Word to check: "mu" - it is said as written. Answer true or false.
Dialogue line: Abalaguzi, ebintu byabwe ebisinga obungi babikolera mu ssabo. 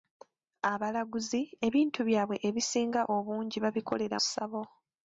false